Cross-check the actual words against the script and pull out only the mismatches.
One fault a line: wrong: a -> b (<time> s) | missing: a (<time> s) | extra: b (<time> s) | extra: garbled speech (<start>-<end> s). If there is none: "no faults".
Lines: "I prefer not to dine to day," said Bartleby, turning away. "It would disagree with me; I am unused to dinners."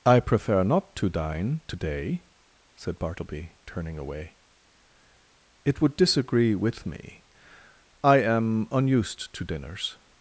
no faults